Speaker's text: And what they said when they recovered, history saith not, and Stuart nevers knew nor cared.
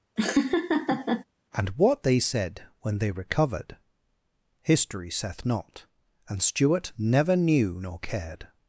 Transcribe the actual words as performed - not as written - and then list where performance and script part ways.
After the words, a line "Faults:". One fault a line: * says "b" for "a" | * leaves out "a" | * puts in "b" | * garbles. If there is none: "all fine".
And what they said when they recovered, history saith not, and Stuart never knew nor cared.
Faults:
* says "never" for "nevers"